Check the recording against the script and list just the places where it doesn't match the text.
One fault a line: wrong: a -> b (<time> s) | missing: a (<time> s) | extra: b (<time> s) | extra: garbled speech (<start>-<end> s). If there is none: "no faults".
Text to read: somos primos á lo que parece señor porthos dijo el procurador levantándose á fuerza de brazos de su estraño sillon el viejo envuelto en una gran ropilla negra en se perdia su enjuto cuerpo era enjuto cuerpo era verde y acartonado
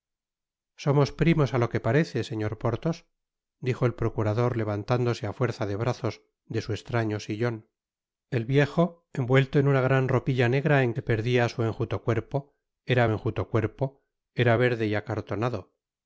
no faults